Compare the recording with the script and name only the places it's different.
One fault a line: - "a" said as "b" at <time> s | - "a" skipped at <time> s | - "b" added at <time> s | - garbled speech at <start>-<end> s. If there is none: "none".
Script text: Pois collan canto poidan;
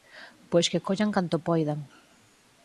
- "que" added at 0.7 s